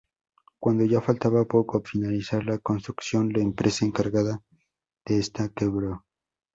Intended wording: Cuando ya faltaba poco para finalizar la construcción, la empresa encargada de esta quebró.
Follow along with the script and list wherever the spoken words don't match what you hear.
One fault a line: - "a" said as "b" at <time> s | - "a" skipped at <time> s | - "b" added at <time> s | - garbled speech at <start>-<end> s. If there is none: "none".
- "para" skipped at 1.8 s